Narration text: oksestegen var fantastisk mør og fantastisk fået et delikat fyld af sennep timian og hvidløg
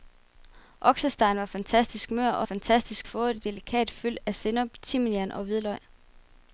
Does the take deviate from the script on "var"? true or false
false